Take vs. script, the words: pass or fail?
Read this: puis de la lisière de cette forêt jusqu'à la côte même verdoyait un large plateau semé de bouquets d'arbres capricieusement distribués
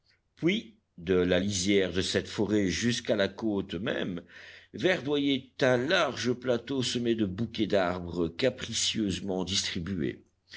pass